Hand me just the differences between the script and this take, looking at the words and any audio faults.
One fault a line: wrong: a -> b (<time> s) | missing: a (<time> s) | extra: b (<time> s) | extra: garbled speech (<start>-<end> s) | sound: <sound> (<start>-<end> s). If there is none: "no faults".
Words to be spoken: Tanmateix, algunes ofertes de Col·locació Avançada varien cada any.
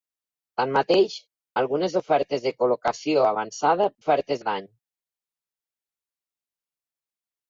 wrong: varien -> ofertes (4.0 s)